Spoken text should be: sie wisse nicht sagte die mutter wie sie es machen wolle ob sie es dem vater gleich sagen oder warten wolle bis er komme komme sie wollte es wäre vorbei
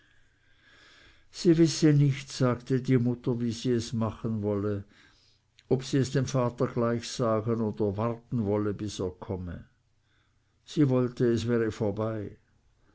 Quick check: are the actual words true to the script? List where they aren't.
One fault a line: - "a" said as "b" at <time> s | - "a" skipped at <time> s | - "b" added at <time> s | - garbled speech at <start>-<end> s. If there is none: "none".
- "komme" skipped at 9.7 s